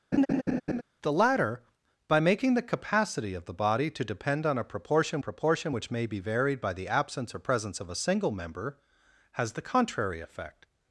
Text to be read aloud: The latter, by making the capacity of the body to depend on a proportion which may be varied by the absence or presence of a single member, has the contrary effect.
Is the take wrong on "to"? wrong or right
right